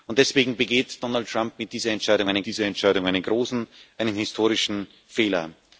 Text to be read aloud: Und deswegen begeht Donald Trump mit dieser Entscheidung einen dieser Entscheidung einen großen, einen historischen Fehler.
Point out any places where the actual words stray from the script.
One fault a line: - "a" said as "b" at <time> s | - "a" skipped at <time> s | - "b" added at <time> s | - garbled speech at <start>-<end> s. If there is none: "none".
none